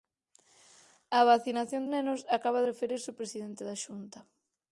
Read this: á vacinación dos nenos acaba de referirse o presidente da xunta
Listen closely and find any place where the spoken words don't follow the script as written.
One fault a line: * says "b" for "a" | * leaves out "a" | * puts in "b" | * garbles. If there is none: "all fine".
* leaves out "dos"
* leaves out "de"